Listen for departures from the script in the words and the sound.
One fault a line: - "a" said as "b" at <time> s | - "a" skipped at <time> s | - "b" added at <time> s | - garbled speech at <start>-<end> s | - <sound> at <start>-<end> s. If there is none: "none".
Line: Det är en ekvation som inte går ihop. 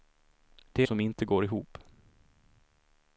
- "är en ekvation" skipped at 0.8 s